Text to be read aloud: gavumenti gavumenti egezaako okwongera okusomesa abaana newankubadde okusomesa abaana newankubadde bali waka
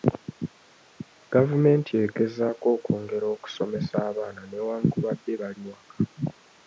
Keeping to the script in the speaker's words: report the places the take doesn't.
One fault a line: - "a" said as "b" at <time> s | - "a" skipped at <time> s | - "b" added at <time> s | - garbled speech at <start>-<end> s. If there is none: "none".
- "gavumenti" skipped at 1.9 s
- "okusomesa abaana newankubadde" skipped at 5.3 s